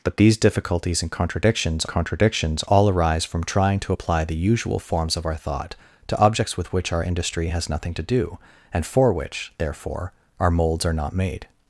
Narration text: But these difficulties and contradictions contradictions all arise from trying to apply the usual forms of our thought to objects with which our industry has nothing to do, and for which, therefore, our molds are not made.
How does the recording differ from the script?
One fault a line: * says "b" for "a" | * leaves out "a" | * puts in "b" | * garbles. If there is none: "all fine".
all fine